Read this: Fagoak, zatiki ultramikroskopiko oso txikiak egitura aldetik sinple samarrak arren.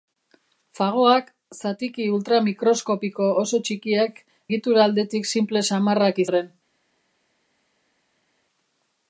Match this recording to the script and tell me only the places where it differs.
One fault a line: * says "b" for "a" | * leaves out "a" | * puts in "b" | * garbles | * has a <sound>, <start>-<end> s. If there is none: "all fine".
all fine